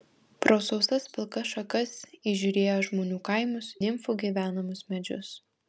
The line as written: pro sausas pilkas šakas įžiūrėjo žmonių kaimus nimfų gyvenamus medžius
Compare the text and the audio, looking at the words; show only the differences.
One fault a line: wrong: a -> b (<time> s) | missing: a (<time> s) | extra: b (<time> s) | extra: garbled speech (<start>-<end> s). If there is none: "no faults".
no faults